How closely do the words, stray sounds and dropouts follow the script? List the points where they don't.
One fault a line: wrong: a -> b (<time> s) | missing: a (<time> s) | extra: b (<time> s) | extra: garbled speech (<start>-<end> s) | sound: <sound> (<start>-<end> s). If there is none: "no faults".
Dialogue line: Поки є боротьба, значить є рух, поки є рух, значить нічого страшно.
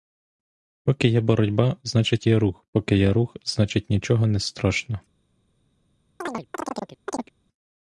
extra: не (4.3 s)
sound: chirp (6.2-7.3 s)